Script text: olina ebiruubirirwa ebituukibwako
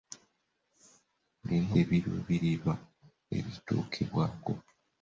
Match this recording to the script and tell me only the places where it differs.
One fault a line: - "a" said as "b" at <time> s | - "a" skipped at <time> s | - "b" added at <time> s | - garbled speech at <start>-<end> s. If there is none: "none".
none